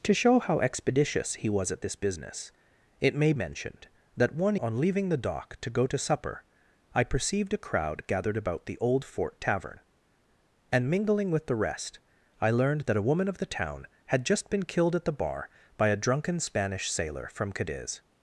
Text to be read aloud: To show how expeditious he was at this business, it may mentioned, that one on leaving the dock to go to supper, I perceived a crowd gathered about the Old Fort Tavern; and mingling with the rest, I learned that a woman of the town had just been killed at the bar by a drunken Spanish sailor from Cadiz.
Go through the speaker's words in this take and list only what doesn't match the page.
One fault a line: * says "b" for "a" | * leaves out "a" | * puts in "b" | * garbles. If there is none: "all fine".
all fine